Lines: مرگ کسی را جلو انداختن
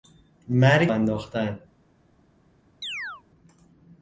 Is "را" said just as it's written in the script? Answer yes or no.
no